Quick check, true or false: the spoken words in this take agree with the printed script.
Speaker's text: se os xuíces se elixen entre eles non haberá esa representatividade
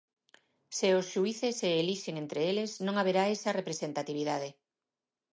true